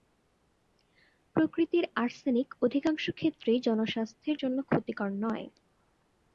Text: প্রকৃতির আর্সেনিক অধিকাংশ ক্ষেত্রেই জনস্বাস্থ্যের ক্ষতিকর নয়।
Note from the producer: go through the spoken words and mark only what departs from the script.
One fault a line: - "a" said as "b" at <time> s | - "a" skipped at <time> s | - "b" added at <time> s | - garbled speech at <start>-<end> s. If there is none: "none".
- "জন্য" added at 4.4 s